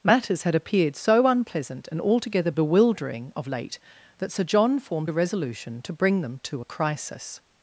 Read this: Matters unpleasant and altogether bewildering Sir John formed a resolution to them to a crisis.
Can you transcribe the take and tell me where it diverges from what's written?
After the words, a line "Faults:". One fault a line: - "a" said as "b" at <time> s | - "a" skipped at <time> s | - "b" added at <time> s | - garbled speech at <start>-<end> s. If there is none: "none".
Matters had appeared so unpleasant and altogether bewildering of late that Sir John formed a resolution to bring them to a crisis.
Faults:
- "had appeared so" added at 0.4 s
- "of late that" added at 3.3 s
- "bring" added at 5.9 s